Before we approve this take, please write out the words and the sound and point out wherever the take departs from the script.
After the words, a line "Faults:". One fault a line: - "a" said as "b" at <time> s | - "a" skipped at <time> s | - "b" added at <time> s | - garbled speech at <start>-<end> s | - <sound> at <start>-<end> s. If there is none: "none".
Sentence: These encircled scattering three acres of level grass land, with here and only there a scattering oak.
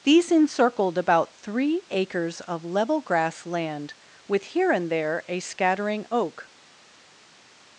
These encircled about three acres of level grass land, with here and there a scattering oak.
Faults:
- "scattering" said as "about" at 1.0 s
- "only" skipped at 4.9 s